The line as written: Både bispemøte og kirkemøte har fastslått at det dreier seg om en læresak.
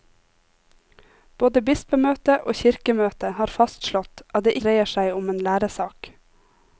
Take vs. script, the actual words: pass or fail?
pass